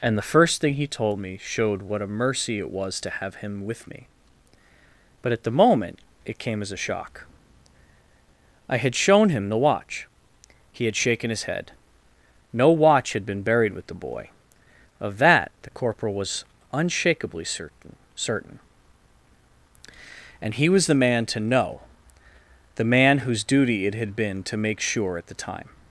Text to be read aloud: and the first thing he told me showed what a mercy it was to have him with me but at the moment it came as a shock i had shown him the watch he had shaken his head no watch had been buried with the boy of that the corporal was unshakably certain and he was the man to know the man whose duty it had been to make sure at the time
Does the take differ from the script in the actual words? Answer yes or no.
yes